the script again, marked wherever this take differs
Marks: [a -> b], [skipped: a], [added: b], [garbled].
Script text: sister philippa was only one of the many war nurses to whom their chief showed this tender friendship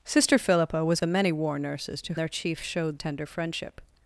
sister philippa was [skipped: only one of] the many war nurses to [skipped: whom] their chief showed [skipped: this] tender friendship